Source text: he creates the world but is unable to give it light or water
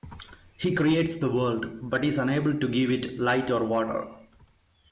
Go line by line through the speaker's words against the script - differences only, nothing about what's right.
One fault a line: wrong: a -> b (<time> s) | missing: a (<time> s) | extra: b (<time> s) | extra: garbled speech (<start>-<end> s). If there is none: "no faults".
no faults